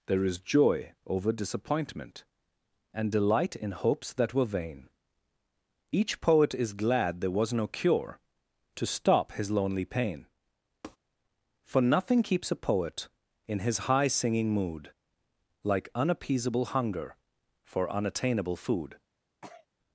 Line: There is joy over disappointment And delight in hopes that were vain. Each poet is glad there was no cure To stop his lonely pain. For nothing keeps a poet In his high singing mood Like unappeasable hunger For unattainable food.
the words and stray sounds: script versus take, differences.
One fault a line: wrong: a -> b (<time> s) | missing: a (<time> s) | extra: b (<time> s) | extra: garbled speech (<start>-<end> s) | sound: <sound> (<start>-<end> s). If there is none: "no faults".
sound: tap (10.8-11.0 s)
sound: sneeze (19.4-19.7 s)